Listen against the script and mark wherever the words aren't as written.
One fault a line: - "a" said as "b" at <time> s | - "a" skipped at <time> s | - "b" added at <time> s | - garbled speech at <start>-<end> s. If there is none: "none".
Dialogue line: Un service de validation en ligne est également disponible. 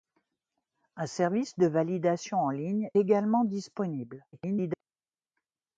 - "est" skipped at 2.9 s
- garbled speech at 4.3-4.8 s